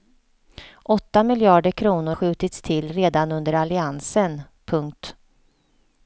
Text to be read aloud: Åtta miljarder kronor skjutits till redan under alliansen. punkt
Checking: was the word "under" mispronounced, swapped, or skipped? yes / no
no